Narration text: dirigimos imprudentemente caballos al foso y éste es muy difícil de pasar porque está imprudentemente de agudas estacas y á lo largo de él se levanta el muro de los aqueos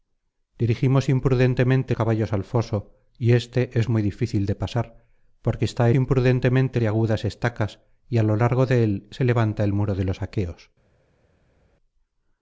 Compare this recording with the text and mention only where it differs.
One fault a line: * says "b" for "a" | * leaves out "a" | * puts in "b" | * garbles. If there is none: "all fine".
all fine